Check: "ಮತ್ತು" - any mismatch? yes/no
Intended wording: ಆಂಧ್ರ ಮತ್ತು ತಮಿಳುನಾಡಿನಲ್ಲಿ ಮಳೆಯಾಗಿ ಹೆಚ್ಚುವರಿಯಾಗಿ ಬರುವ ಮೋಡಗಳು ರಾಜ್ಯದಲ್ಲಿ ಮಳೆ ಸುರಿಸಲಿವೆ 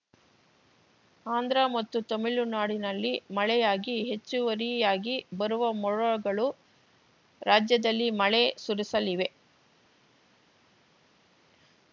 no